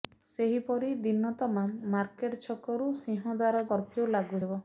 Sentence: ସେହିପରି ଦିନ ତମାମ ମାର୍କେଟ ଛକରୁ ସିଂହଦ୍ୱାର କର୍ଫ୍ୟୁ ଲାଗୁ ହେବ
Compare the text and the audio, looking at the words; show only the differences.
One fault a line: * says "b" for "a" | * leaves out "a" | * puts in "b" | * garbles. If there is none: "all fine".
all fine